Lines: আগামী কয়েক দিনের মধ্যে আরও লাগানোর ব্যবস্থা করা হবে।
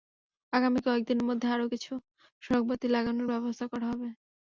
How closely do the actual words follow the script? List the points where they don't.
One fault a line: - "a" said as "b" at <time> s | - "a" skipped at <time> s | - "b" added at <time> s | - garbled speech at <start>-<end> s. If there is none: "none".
- "কিছু সড়কবাতি" added at 1.7 s